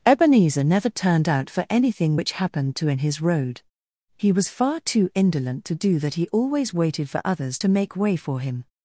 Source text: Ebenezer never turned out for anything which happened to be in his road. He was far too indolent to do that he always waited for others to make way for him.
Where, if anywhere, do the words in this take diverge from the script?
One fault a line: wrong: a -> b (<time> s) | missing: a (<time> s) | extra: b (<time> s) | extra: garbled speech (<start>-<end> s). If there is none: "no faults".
missing: be (2.9 s)